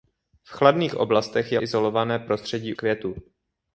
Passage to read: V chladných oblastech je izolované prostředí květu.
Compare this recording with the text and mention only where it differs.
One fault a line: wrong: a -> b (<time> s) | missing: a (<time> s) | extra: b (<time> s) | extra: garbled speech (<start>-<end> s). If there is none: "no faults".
no faults